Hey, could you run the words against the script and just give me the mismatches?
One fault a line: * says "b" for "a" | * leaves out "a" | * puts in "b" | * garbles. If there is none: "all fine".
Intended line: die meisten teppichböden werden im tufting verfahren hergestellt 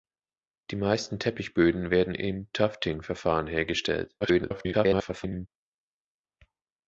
* garbles